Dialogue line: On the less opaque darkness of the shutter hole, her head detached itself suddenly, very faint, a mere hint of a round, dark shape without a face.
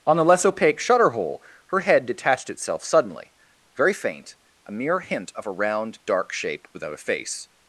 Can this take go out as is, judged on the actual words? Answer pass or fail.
fail